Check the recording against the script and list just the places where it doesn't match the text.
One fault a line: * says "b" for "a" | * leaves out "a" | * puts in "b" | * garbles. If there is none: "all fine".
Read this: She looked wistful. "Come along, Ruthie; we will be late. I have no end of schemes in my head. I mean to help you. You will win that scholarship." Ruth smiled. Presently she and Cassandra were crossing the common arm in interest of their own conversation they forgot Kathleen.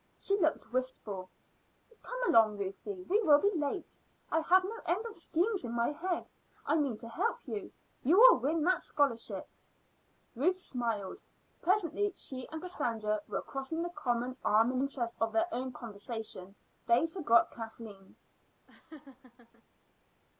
all fine